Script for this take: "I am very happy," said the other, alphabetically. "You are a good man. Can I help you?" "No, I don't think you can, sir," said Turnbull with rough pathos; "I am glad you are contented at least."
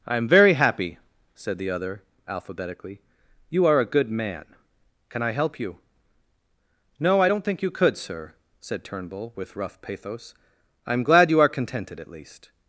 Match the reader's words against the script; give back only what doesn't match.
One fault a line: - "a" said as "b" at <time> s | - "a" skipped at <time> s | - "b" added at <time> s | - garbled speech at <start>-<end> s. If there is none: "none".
- "can" said as "could" at 7.7 s